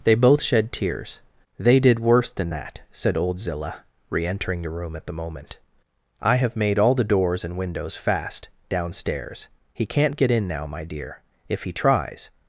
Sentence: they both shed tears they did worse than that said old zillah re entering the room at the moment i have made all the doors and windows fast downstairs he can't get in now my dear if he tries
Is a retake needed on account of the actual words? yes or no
no